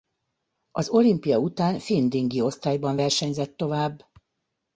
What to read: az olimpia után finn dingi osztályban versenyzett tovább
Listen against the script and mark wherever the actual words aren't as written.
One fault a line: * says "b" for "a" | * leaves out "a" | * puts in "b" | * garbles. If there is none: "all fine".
all fine